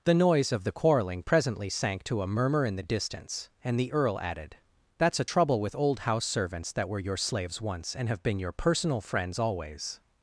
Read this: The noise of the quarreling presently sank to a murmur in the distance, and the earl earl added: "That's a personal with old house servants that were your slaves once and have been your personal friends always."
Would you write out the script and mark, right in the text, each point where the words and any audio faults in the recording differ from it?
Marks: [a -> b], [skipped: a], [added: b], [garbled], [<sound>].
The noise of the quarreling presently sank to a murmur in the distance, and the earl [skipped: earl] added: "That's a [personal -> trouble] with old house servants that were your slaves once and have been your personal friends always."